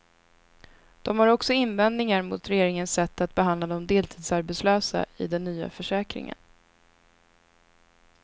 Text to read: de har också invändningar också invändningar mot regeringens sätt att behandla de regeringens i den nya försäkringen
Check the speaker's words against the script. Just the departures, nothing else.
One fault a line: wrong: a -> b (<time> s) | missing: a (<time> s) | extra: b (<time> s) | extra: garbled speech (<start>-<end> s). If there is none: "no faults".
missing: också invändningar (2.2 s)
wrong: regeringens -> deltidsarbetslösa (3.9 s)